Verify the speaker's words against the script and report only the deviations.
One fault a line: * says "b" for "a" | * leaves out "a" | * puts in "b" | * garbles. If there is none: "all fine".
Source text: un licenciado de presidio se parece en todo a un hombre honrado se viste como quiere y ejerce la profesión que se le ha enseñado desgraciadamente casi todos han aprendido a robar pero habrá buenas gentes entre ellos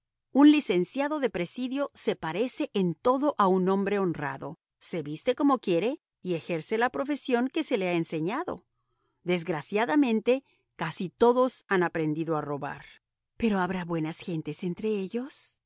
all fine